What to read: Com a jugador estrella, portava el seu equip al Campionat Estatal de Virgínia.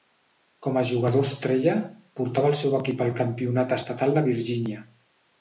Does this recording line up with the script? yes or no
yes